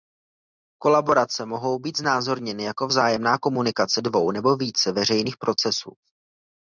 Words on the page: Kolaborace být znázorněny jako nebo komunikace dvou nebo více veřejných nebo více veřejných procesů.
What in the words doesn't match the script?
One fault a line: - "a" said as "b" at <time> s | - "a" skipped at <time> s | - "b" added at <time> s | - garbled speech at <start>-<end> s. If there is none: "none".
- "mohou" added at 1.4 s
- "nebo" said as "vzájemná" at 2.8 s
- "nebo více veřejných" skipped at 5.4 s